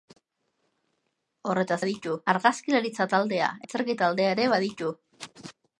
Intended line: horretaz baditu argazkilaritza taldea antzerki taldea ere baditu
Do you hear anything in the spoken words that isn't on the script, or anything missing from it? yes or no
no